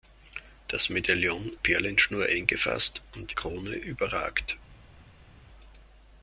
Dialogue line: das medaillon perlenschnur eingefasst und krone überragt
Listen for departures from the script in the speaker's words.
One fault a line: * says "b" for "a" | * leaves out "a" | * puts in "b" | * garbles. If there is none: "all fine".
all fine